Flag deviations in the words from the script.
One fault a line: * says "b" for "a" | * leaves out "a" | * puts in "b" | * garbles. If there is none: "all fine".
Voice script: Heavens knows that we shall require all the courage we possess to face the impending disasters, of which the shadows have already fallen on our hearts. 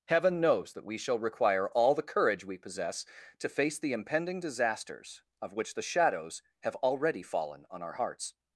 * says "Heaven" for "Heavens"